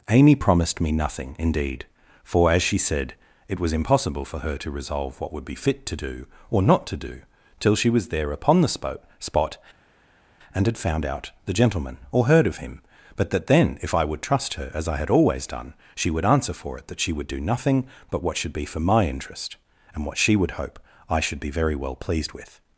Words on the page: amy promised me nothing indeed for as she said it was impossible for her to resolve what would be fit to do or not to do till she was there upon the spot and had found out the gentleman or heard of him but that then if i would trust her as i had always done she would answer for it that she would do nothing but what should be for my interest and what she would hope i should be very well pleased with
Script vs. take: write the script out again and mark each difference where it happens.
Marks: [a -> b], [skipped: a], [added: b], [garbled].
amy promised me nothing indeed for as she said it was impossible for her to resolve what would be fit to do or not to do till she was there upon the spot [added: spot] and had found out the gentleman or heard of him but that then if i would trust her as i had always done she would answer for it that she would do nothing but what should be for my interest and what she would hope i should be very well pleased with